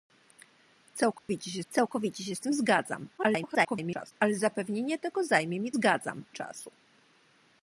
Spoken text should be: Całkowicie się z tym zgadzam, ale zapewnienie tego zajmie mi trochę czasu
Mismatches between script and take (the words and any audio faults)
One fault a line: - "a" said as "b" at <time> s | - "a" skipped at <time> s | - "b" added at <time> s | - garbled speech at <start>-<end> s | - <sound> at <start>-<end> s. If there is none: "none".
- dropout at 1.2-1.3 s
- "całkowicie się" added at 1.7 s
- garbled speech at 3.2-4.1 s
- "trochę" said as "zgadzam" at 5.7 s